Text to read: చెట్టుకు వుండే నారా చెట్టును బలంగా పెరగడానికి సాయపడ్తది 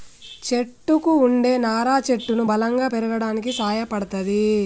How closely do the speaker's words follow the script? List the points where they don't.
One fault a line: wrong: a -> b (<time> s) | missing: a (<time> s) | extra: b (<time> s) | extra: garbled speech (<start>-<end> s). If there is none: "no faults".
no faults